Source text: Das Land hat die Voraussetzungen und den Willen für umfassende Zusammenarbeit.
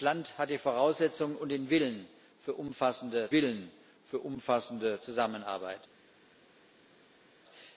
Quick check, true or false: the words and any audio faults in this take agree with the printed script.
false